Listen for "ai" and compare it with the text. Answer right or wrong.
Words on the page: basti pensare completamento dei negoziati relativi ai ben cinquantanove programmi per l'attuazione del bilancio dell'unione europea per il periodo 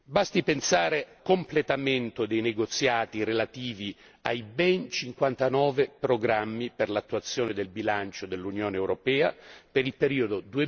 right